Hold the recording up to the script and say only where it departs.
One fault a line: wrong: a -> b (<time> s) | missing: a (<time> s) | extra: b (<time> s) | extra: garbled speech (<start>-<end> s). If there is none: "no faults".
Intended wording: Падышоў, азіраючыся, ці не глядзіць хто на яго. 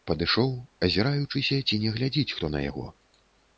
no faults